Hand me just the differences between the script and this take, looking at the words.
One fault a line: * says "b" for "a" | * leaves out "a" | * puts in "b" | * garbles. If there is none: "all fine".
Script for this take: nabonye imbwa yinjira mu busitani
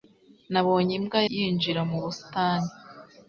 all fine